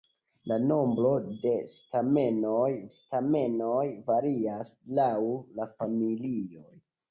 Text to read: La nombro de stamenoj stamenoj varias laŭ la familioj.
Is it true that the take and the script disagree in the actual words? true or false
false